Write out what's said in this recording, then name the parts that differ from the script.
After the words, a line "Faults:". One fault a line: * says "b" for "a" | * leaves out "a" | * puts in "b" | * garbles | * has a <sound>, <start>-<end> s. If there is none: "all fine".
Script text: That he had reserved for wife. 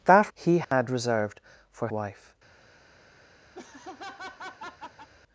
That he had reserved for wife.
Faults:
* has a dropout, 0.6-0.7 s
* has a laugh, 3.5-5.1 s